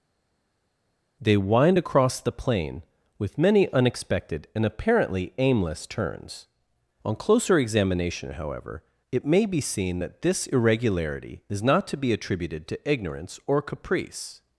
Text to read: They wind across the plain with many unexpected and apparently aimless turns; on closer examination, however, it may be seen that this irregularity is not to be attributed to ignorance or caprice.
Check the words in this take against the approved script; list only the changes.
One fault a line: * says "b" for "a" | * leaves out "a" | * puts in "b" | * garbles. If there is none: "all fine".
all fine